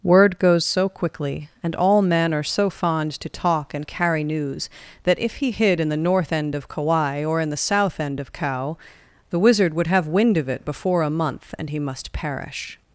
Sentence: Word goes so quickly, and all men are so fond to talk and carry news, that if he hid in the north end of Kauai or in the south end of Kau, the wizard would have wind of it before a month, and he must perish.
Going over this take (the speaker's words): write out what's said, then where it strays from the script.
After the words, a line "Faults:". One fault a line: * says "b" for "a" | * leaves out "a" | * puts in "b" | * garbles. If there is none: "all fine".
Word goes so quickly, and all men are so fond to talk and carry news, that if he hid in the north end of Kauai or in the south end of Kau, the wizard would have wind of it before a month, and he must perish.
Faults:
all fine